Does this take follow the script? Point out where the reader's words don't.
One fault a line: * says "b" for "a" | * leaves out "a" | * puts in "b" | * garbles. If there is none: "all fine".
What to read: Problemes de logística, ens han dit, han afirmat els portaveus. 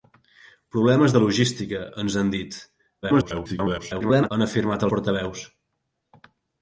* garbles
* leaves out "els"